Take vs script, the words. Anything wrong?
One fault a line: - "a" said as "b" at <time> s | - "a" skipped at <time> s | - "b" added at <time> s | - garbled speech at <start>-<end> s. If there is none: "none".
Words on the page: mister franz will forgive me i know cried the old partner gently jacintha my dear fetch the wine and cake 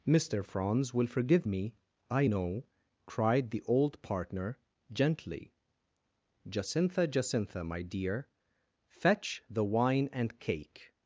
- "jacintha" added at 7.1 s